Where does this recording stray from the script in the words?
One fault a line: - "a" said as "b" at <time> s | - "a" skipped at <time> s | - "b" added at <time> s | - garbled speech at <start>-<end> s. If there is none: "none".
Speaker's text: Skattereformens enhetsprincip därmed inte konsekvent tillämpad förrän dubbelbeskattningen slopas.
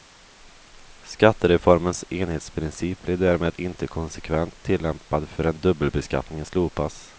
- "blir" added at 3.0 s